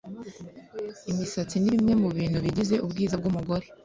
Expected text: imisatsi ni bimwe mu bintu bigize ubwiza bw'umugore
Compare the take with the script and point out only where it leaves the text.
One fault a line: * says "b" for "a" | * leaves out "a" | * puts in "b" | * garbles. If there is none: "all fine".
all fine